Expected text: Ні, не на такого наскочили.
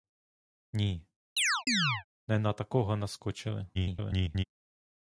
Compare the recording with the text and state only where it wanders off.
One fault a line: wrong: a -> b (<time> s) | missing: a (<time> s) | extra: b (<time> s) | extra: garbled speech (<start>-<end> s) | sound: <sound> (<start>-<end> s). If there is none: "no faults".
sound: chirp (1.4-2.0 s)
extra: garbled speech (3.7-4.4 s)